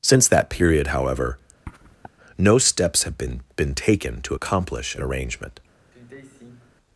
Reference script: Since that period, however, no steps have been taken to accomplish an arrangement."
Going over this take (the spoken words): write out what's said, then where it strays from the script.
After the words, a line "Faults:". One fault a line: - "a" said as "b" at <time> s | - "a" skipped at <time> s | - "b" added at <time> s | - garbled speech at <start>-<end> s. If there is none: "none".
Since that period, however, no steps have been been taken to accomplish an arrangement."
Faults:
- "been" added at 3.6 s